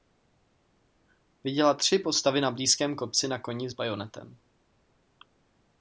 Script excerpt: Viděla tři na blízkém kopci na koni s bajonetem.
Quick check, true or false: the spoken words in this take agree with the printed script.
false